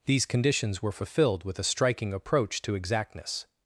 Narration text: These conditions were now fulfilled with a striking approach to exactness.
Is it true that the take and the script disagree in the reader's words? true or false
true